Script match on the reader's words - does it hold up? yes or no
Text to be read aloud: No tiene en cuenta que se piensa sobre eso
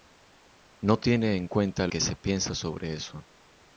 yes